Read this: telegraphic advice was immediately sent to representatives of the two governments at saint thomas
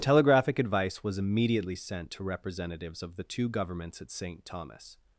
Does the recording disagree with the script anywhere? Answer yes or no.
no